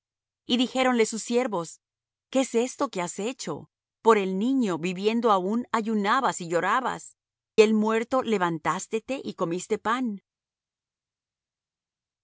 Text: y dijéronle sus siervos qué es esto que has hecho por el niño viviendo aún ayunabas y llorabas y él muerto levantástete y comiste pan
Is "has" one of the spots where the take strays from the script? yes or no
no